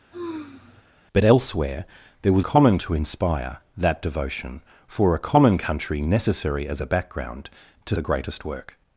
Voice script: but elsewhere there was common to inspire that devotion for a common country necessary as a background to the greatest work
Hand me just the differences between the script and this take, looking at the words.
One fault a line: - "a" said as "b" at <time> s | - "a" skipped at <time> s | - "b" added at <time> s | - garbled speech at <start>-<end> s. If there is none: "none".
none